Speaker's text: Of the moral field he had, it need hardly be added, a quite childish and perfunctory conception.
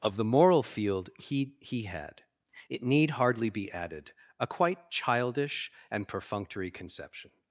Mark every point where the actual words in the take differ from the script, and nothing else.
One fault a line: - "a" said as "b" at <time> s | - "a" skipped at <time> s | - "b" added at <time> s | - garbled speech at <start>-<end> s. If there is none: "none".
- "he" added at 1.6 s